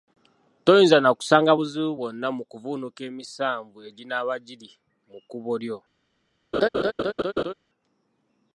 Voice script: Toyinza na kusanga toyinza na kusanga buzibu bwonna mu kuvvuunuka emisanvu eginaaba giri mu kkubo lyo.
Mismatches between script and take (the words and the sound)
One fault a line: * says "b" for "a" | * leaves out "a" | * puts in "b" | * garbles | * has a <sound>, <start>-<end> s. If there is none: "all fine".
* leaves out "toyinza na kusanga"
* has a laugh, 6.5-7.5 s